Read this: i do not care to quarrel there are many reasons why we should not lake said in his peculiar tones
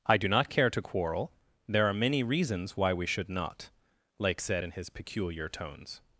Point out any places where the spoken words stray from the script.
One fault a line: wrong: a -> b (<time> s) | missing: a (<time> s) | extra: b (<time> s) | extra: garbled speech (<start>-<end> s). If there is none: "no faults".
no faults